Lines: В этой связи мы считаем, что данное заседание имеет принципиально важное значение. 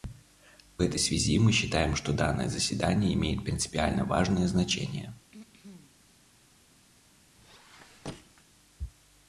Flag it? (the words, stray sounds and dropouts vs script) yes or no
yes